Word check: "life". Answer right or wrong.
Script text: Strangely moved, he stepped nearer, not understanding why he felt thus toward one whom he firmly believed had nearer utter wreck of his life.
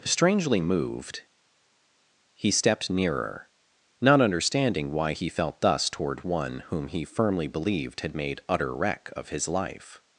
right